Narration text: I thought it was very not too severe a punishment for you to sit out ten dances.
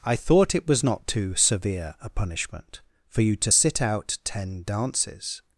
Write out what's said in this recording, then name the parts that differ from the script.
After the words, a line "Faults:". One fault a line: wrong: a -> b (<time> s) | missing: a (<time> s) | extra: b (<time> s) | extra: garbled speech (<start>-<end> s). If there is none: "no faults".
I thought it was not too severe a punishment for you to sit out ten dances.
Faults:
missing: very (0.8 s)